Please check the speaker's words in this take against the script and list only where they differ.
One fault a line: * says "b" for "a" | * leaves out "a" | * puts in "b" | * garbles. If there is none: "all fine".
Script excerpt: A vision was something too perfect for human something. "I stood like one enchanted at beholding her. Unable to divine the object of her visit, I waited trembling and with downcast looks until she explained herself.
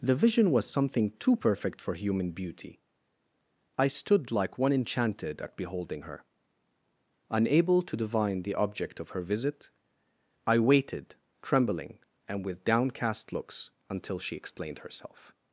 * says "The" for "A"
* says "beauty" for "something"